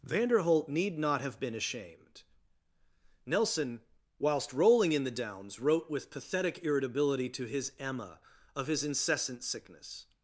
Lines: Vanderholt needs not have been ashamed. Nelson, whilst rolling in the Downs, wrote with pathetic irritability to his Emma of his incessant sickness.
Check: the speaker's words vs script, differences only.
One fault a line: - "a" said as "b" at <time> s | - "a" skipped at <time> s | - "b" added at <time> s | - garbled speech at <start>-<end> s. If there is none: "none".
- "needs" said as "need" at 0.7 s